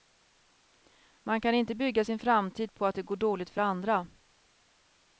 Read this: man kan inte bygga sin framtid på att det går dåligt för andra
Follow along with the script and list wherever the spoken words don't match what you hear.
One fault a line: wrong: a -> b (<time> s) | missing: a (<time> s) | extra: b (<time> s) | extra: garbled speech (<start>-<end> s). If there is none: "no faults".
no faults